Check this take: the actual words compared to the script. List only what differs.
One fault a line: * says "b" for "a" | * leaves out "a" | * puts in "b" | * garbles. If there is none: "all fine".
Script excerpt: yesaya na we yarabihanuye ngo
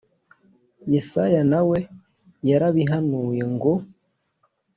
all fine